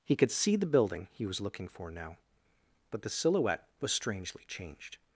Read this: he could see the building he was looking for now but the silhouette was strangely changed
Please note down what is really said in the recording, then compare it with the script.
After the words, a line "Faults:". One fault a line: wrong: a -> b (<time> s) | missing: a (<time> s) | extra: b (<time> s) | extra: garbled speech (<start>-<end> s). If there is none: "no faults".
he could see the building he was looking for now but the silhouette was strangely changed
Faults:
no faults